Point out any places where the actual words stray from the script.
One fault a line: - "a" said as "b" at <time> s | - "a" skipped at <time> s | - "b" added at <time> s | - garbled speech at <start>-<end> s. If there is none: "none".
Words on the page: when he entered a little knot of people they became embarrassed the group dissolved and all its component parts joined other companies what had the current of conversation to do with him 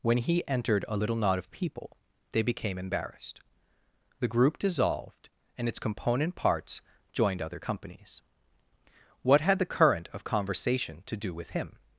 - "all" skipped at 5.7 s